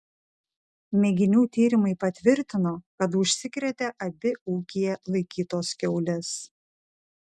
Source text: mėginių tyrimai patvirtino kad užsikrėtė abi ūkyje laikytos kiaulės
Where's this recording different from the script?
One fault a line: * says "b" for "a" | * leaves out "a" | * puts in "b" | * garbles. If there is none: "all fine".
all fine